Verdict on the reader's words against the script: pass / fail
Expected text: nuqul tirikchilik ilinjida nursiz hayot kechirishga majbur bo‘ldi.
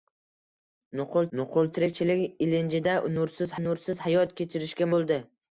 fail